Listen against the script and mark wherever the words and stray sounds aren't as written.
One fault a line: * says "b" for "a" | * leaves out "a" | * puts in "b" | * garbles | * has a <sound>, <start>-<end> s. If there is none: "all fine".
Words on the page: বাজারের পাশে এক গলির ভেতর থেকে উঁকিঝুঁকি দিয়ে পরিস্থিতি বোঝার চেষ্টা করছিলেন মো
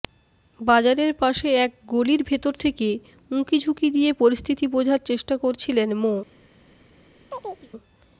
* has a chirp, 7.3-7.7 s